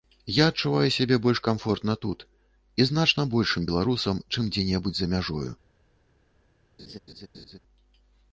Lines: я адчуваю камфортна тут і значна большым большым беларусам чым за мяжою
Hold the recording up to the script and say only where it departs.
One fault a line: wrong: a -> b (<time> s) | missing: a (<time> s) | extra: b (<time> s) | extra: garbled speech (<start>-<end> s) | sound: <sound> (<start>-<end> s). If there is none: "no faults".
extra: сябе больш (0.9 s)
missing: большым (3.7 s)
extra: дзе небудзь (4.5 s)
sound: laugh (6.8-7.6 s)